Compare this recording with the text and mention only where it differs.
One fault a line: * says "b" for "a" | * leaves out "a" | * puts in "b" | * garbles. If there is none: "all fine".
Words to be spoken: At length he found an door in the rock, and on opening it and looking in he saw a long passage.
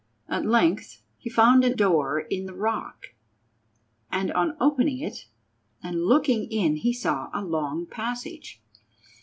all fine